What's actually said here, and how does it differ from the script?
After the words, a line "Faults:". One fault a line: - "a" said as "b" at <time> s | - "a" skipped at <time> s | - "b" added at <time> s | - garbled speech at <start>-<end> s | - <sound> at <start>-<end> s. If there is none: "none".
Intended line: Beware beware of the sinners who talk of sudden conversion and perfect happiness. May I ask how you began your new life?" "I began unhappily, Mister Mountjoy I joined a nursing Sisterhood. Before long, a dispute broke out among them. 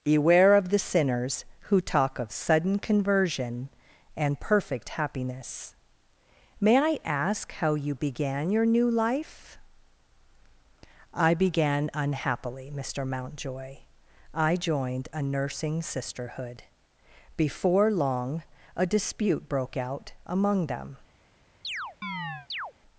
Beware of the sinners who talk of sudden conversion and perfect happiness. May I ask how you began your new life?" "I began unhappily, Mister Mountjoy I joined a nursing Sisterhood. Before long, a dispute broke out among them.
Faults:
- "beware" skipped at 0.6 s
- chirp at 21.6-22.7 s